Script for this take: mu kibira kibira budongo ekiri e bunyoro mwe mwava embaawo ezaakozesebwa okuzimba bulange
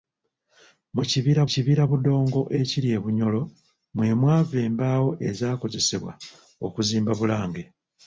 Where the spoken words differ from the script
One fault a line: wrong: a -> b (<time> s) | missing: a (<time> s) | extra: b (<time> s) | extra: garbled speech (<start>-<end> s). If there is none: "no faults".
no faults